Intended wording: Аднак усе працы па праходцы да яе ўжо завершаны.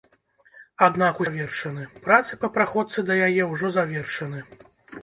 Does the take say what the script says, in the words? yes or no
no